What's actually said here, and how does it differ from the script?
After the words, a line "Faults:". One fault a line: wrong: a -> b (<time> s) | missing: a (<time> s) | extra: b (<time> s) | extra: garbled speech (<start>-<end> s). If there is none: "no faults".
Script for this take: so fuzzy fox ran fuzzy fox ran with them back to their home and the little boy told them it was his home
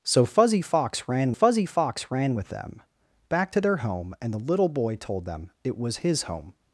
so fuzzy fox ran fuzzy fox ran with them back to their home and the little boy told them it was his home
Faults:
no faults